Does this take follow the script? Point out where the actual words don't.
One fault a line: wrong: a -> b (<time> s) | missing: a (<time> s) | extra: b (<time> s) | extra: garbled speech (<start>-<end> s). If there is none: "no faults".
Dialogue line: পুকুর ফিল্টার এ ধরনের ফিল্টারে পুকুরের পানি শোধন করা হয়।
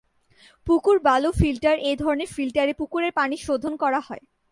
extra: বালু (1.0 s)